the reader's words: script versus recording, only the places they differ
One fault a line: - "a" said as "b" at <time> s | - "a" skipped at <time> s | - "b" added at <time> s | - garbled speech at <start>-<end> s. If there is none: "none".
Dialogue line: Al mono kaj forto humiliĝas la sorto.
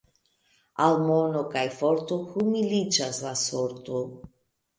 none